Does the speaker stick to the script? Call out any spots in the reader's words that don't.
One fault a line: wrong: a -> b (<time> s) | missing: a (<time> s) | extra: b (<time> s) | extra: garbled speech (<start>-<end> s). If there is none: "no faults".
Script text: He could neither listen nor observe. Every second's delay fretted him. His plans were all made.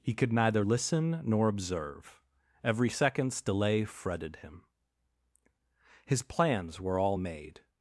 no faults